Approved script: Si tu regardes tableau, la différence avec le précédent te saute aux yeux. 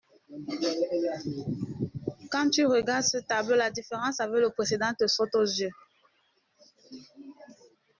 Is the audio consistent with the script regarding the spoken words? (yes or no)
no